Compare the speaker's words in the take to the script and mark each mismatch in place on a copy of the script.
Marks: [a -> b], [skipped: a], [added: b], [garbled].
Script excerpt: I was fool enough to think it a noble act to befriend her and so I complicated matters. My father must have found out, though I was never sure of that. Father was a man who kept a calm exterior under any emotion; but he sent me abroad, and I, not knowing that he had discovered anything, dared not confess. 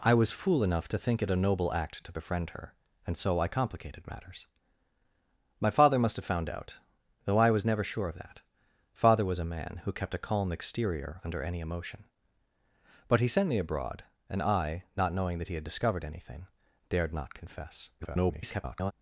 I was fool enough to think it a noble act to befriend her and so I complicated matters. My father must have found out, though I was never sure of that. Father was a man who kept a calm exterior under any emotion; but he sent me abroad, and I, not knowing that he had discovered anything, dared not confess. [garbled]